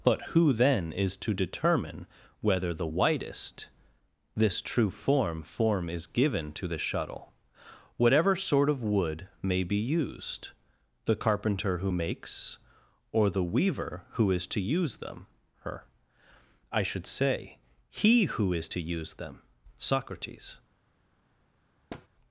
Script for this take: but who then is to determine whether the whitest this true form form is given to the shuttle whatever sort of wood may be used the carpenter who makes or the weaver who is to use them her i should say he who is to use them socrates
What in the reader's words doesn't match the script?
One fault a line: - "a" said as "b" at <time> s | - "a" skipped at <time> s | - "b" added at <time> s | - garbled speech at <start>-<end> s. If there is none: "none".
none